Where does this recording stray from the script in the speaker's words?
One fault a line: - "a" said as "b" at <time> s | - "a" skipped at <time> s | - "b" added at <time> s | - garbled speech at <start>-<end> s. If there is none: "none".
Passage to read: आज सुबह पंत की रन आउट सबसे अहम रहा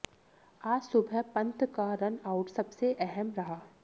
- "की" said as "का" at 1.8 s